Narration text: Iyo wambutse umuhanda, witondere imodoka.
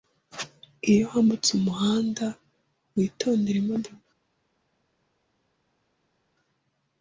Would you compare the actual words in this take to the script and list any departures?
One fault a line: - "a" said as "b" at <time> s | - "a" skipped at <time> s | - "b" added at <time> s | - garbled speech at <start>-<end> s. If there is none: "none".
none